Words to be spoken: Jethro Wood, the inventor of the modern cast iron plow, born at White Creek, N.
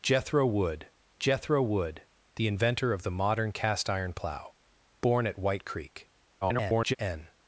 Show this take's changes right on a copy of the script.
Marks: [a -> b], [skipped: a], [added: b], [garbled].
Jethro Wood, [added: jethro Wood] the inventor of the modern cast iron plow, born at White Creek, [garbled] N.